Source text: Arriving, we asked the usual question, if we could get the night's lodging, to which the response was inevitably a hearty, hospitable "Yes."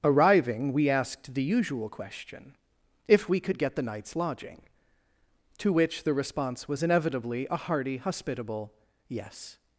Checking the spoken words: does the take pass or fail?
pass